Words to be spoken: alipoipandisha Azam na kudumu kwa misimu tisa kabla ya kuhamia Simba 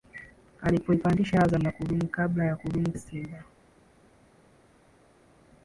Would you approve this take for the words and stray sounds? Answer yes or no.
no